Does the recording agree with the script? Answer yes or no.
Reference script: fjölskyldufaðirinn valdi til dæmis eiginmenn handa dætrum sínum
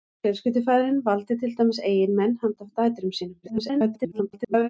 no